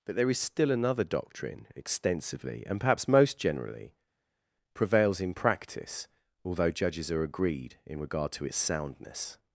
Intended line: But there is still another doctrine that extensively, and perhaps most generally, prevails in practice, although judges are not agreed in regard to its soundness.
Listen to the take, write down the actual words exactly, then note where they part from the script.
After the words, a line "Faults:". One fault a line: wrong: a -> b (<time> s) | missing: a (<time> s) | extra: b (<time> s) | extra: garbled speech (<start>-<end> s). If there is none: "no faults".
But there is still another doctrine extensively, and perhaps most generally, prevails in practice, although judges are agreed in regard to its soundness.
Faults:
missing: that (1.7 s)
missing: not (7.2 s)